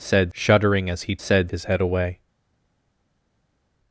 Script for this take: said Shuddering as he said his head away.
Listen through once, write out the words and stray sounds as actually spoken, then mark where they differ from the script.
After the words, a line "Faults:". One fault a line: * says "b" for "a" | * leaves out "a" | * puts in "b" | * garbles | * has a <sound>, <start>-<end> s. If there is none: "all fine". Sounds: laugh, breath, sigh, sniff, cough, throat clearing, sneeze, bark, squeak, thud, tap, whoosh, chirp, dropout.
said Shuddering as he said his head away.
Faults:
all fine